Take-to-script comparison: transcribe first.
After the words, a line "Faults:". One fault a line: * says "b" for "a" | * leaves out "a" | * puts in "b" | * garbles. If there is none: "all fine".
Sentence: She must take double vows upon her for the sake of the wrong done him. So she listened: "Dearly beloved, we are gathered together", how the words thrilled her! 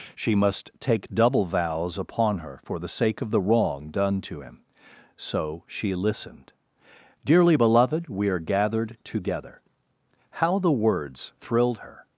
She must take double vows upon her for the sake of the wrong done to him. So she listened: "Dearly beloved, we are gathered together", how the words thrilled her!
Faults:
* puts in "to"